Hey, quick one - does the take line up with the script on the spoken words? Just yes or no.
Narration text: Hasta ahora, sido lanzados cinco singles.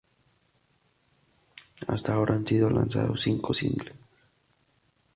no